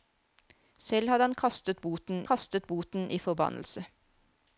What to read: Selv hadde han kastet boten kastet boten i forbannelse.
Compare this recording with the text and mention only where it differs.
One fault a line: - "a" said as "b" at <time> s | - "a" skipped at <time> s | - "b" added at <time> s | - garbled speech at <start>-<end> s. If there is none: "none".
none